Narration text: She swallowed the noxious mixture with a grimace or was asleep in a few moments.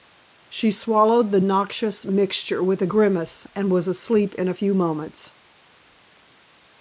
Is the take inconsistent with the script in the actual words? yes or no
yes